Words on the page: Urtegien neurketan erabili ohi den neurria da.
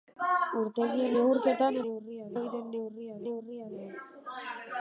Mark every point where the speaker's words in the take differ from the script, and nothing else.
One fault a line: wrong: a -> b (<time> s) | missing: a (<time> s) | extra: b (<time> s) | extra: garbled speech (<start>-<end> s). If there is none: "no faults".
wrong: erabili -> neurria (1.9 s)
extra: neurria (3.3 s)